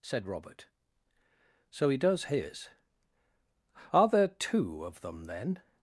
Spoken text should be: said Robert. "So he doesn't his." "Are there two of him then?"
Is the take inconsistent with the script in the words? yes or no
yes